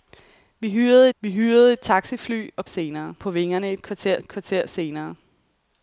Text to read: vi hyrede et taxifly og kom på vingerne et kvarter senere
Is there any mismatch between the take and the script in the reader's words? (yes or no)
yes